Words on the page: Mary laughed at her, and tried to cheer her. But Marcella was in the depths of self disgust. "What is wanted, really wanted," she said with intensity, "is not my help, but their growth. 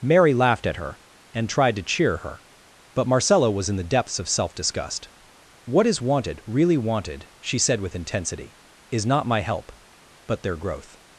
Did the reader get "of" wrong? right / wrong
right